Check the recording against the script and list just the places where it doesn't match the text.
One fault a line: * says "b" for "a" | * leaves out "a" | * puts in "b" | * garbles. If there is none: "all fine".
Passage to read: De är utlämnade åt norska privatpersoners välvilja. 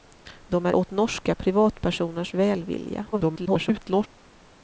* leaves out "utlämnade"
* garbles